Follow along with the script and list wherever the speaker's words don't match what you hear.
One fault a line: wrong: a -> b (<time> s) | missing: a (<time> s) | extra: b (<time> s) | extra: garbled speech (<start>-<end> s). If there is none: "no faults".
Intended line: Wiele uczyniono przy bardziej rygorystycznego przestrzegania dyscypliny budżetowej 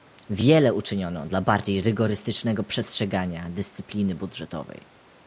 wrong: przy -> dla (1.3 s)